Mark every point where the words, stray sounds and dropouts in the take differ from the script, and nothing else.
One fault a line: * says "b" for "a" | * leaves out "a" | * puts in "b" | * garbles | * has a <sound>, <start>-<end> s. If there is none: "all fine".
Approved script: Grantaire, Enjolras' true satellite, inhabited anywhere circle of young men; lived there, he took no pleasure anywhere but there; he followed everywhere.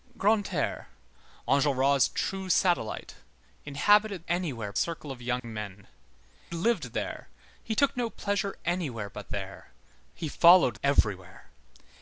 * has a dropout, 5.4-5.4 s